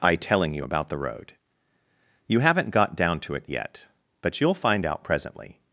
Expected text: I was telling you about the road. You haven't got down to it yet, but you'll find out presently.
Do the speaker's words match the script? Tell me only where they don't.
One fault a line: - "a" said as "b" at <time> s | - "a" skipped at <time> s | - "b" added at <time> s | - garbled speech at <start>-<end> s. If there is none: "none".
- "was" skipped at 0.1 s